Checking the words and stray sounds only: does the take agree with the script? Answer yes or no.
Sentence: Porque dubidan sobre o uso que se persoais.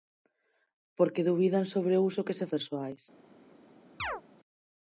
no